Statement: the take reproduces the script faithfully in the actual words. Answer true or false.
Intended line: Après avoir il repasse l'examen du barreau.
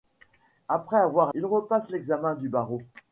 true